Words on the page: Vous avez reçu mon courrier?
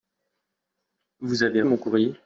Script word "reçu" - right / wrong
wrong